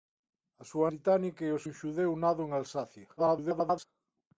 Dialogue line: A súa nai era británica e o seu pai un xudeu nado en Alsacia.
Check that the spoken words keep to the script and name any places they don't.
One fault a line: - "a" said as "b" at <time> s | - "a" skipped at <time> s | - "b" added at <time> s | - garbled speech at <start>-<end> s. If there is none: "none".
- "nai era" skipped at 0.9 s
- "seu pai" skipped at 1.6 s
- garbled speech at 3.2-3.9 s